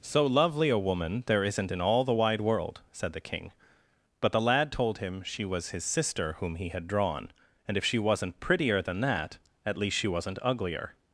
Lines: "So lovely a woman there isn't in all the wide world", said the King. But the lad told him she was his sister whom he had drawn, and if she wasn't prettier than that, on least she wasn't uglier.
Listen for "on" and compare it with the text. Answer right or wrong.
wrong